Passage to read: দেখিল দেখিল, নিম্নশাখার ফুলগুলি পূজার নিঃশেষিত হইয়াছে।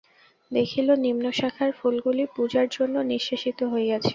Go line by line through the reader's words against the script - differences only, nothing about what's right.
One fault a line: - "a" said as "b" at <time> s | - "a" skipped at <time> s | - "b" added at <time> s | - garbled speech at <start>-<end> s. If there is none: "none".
- "দেখিল" skipped at 0.9 s
- "জন্য" added at 2.8 s